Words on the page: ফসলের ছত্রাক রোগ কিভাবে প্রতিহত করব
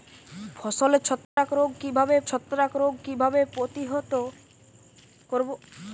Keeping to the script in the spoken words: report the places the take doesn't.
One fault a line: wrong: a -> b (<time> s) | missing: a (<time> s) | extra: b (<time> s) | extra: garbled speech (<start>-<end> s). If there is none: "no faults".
extra: ছত্রাক রোগ কিভাবে (2.3 s)